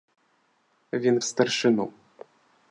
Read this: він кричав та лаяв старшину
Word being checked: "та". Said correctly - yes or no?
no